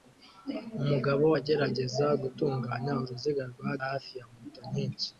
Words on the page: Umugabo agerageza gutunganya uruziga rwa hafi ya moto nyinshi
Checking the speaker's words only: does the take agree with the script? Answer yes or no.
yes